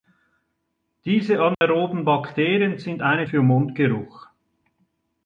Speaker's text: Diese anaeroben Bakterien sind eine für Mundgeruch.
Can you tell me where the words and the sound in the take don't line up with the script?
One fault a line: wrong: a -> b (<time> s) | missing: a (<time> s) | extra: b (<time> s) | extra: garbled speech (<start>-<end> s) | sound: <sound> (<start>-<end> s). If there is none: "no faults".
sound: dropout (1.5-1.6 s)